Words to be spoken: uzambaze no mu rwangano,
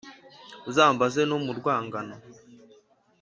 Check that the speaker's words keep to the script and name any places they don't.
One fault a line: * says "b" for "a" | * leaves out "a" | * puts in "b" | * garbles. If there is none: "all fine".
all fine